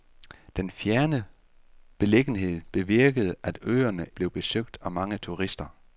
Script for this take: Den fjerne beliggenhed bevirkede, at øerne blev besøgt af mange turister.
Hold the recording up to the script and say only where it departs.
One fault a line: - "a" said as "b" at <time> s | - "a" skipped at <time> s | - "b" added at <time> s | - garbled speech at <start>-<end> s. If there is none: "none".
none